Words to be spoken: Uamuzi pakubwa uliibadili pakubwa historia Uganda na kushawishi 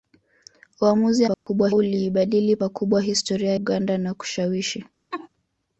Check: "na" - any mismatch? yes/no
no